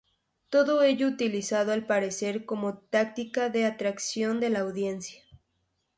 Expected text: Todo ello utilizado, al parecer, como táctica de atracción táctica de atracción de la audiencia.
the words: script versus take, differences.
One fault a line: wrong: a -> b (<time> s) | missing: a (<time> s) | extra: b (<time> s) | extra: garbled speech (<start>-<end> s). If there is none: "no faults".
missing: táctica de atracción (4.4 s)